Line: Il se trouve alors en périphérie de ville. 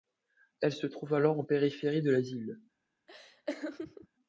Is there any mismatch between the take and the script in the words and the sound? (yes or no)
yes